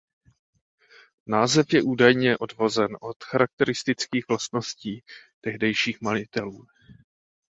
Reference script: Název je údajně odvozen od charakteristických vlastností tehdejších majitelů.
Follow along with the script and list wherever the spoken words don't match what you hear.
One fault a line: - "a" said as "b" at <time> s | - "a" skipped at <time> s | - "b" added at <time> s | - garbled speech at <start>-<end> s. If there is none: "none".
none